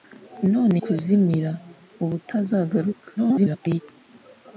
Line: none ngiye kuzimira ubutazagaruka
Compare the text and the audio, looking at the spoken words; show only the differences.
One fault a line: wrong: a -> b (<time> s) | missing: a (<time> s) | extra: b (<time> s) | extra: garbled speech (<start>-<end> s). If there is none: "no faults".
missing: ngiye (0.8 s)
extra: garbled speech (3.2-3.8 s)